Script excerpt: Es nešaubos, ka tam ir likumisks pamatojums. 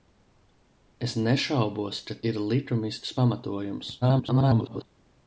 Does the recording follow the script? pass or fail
fail